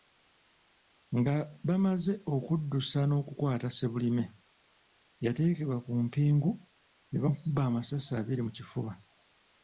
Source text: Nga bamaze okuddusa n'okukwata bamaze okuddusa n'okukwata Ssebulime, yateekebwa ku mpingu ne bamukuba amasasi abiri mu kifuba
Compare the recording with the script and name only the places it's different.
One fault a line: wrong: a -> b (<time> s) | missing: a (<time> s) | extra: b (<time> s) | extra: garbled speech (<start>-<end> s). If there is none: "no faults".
missing: bamaze okuddusa n'okukwata (3.7 s)